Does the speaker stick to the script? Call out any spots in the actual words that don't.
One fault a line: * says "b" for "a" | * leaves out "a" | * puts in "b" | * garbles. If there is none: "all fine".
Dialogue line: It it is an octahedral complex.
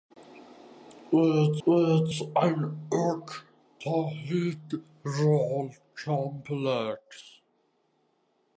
all fine